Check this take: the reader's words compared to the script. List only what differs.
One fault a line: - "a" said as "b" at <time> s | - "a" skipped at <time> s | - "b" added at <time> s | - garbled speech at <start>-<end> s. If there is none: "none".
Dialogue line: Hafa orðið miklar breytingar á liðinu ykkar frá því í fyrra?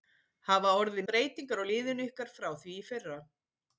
- "miklar" skipped at 1.1 s